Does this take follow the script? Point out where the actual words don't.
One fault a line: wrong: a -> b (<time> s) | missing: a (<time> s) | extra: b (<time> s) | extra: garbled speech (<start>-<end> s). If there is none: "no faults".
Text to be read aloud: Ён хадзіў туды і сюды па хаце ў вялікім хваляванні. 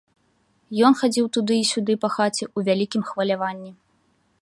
no faults